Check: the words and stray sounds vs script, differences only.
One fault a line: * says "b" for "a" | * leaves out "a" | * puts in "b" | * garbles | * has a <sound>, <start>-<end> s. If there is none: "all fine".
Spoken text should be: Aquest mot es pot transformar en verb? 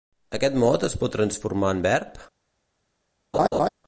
* has a laugh, 3.3-3.7 s